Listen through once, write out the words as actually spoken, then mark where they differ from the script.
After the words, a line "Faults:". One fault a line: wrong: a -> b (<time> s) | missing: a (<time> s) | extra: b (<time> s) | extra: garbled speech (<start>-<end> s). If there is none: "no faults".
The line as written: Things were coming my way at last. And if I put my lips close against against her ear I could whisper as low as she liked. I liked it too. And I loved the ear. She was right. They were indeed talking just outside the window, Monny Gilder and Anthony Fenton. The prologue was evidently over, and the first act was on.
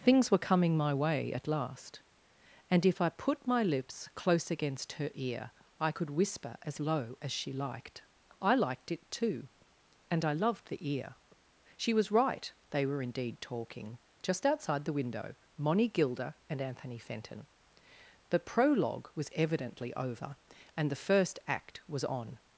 Things were coming my way at last. And if I put my lips close against her ear I could whisper as low as she liked. I liked it too. And I loved the ear. She was right. They were indeed talking just outside the window, Monny Gilder and Anthony Fenton. The prologue was evidently over, and the first act was on.
Faults:
missing: against (4.9 s)